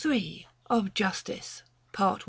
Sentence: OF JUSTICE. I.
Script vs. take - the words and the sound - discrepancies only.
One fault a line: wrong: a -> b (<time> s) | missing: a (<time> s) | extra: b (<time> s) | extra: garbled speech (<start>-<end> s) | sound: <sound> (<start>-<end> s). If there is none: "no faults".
extra: PART (1.9 s)